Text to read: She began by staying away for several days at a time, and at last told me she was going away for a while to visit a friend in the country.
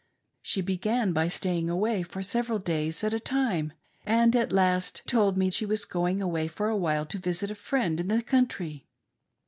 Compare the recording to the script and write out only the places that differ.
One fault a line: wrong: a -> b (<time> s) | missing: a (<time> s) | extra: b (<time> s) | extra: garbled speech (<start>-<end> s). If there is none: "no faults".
no faults